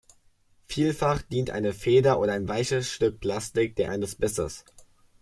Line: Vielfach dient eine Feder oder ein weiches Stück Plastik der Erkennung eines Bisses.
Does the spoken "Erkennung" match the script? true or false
false